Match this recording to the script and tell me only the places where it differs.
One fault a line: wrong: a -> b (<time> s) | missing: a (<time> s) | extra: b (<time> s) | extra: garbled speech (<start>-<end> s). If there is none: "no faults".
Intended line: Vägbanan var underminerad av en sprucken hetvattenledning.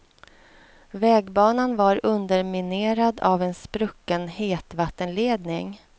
no faults